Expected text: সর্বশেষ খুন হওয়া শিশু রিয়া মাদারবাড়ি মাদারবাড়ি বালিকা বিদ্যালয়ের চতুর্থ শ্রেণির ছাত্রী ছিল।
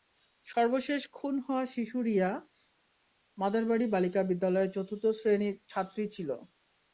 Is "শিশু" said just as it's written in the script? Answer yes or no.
yes